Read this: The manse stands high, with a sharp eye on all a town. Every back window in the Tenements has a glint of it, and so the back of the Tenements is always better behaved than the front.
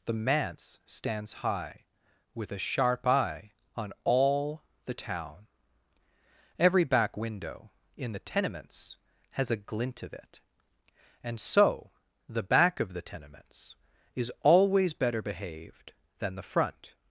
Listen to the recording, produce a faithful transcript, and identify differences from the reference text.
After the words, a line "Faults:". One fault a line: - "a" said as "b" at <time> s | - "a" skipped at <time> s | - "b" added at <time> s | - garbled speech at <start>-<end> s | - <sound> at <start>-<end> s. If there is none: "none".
The manse stands high, with a sharp eye on all the town. Every back window in the Tenements has a glint of it, and so the back of the Tenements is always better behaved than the front.
Faults:
- "a" said as "the" at 4.8 s